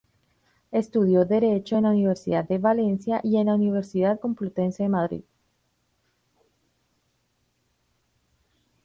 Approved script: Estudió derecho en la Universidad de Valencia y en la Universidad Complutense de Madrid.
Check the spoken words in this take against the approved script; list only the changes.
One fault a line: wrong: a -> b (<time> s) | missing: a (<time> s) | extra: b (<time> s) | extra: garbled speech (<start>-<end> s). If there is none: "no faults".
no faults